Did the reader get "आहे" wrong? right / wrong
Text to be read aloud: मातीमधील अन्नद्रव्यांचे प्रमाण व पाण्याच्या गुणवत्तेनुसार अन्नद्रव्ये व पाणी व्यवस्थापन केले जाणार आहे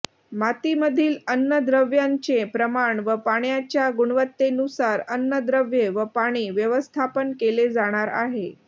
right